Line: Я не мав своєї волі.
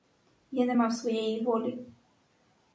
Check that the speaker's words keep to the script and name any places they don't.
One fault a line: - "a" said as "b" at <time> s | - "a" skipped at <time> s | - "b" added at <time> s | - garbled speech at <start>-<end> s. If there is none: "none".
none